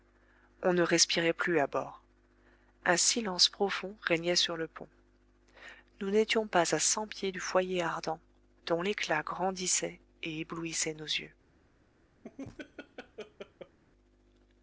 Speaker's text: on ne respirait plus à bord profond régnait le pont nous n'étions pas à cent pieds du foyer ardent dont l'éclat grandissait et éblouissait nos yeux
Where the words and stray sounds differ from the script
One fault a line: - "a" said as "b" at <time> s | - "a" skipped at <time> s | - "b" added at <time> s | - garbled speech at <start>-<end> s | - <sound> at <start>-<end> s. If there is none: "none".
- "un silence" added at 2.9 s
- "sur" added at 4.3 s
- laugh at 12.2-13.8 s